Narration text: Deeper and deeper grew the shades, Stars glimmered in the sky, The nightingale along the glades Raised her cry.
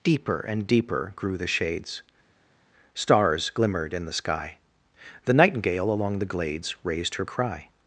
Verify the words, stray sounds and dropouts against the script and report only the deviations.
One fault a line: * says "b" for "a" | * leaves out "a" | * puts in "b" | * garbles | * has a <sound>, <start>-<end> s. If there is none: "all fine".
all fine